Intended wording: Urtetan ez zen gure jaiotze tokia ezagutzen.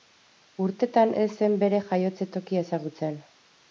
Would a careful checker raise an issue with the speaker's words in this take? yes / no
yes